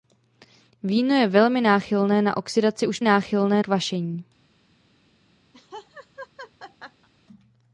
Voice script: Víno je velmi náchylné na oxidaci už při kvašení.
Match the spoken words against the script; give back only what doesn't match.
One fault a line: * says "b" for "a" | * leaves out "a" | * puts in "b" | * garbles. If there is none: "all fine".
* says "náchylné" for "při"